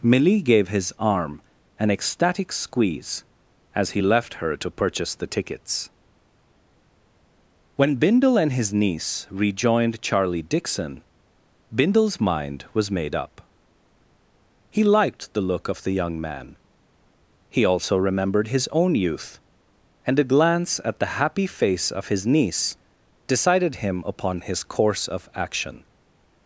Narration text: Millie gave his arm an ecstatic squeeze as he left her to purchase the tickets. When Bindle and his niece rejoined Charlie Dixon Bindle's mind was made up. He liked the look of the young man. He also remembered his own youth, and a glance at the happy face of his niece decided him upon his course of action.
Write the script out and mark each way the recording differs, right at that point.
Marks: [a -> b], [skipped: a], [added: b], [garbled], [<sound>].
Millie gave his arm an ecstatic squeeze as he left her to purchase the tickets. When Bindle and his niece rejoined Charlie Dixon Bindle's mind was made up. He liked the look of the young man. He also remembered his own youth, and a glance at the happy face of his niece decided him upon his course of action.